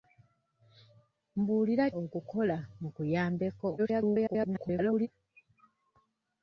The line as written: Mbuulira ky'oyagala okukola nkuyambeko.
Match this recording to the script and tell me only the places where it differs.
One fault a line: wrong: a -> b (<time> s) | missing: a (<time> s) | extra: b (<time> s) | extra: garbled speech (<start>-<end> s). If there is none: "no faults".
missing: ky'oyagala (1.9 s)
extra: garbled speech (3.8-5.1 s)